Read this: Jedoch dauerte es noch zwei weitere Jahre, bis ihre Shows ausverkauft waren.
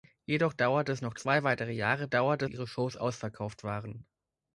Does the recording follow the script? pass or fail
fail